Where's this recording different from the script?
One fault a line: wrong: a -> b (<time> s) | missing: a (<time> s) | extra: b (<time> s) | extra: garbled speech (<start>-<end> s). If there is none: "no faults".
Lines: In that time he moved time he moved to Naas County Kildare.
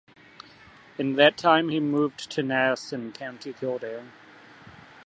missing: time he moved (2.3 s)
extra: in (2.9 s)